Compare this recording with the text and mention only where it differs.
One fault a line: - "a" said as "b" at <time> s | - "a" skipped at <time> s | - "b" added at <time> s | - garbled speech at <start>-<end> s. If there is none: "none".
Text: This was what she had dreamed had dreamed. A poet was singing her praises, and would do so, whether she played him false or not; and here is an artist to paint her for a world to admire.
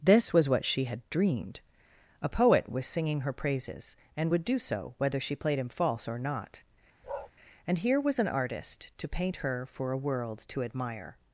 - "had dreamed" skipped at 1.6 s
- "is" said as "was" at 8.0 s